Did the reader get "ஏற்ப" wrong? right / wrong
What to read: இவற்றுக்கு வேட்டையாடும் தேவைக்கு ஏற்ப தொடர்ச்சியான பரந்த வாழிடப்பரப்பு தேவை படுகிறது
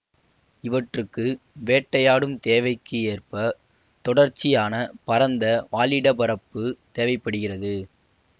right